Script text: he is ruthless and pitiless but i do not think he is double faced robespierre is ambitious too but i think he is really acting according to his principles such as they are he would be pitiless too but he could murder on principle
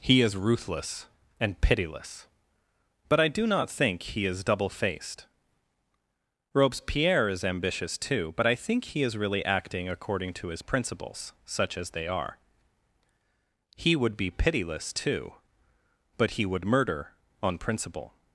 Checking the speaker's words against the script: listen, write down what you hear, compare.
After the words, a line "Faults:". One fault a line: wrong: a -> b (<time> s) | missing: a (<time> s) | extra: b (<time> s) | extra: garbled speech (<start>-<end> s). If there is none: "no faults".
he is ruthless and pitiless but i do not think he is double faced robespierre is ambitious too but i think he is really acting according to his principles such as they are he would be pitiless too but he would murder on principle
Faults:
wrong: could -> would (16.5 s)